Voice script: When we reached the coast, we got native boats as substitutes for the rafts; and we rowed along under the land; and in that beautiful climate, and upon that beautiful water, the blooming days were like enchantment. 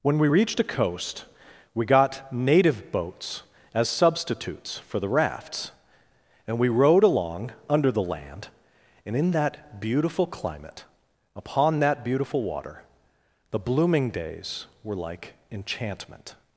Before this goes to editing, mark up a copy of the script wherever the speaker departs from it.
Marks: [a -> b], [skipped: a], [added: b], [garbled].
When we reached [the -> a] coast, we got native boats as substitutes for the rafts; and we rowed along under the land; and in that beautiful climate, [skipped: and] upon that beautiful water, the blooming days were like enchantment.